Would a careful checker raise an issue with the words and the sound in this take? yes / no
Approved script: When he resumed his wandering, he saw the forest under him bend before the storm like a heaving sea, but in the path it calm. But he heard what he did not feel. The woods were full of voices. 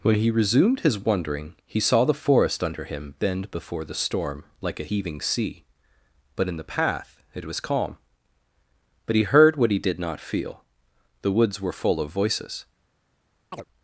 yes